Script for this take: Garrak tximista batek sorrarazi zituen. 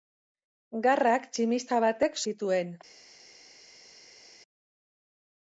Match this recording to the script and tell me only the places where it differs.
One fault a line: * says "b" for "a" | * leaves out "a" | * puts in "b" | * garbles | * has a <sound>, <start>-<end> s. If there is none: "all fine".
* leaves out "sorrarazi"